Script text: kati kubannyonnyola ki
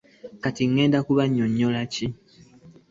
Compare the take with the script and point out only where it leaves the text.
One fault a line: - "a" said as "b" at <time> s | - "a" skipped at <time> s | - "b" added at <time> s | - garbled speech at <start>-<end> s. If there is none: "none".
- "ŋŋenda" added at 0.7 s